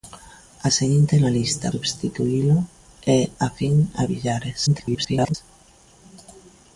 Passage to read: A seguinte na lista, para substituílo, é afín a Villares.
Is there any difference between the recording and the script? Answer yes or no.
yes